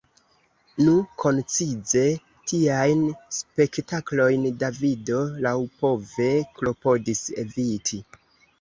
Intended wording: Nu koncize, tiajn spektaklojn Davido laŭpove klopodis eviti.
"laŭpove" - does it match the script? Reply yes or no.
yes